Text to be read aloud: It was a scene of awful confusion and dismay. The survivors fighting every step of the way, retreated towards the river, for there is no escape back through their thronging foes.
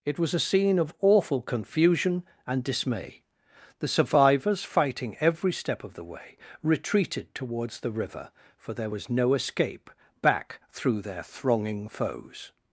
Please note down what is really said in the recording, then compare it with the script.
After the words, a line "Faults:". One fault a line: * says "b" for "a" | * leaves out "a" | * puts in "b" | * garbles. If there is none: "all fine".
It was a scene of awful confusion and dismay. The survivors fighting every step of the way, retreated towards the river, for there was no escape back through their thronging foes.
Faults:
* says "was" for "is"